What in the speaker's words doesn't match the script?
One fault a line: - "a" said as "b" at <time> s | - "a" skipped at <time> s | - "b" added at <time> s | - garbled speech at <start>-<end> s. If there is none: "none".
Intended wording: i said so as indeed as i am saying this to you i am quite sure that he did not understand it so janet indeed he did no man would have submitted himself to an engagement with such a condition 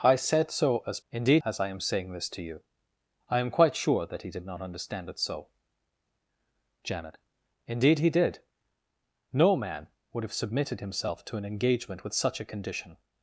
none